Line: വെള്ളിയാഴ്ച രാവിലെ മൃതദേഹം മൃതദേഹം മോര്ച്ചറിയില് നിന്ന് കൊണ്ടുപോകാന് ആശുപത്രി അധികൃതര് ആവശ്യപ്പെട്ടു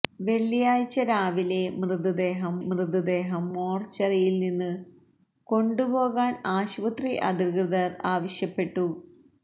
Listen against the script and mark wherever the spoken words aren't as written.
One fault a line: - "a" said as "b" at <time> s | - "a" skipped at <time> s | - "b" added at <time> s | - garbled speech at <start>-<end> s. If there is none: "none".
none